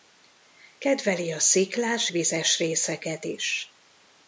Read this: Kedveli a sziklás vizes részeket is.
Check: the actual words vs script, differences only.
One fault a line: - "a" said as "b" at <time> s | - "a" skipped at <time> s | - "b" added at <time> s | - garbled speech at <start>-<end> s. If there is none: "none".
none